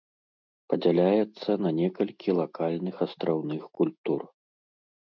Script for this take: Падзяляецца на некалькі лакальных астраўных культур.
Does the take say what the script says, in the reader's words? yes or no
yes